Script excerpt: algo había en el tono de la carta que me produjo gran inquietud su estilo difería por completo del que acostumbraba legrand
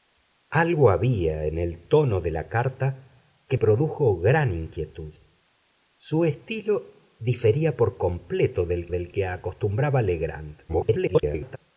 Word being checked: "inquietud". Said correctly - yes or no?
yes